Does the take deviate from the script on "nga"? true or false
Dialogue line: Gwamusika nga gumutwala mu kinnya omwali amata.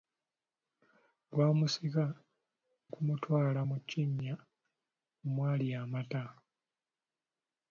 true